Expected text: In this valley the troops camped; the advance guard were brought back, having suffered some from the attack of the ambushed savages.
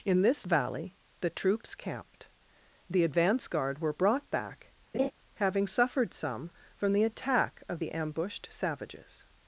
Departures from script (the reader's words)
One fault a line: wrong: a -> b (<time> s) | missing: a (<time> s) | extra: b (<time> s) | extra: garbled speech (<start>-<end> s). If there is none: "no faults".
no faults